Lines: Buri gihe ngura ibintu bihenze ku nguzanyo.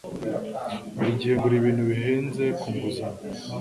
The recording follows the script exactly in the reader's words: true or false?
true